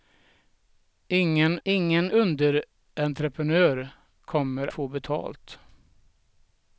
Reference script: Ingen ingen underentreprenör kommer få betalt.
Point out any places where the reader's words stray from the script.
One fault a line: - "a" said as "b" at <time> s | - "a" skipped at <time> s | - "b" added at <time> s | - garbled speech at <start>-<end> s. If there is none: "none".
none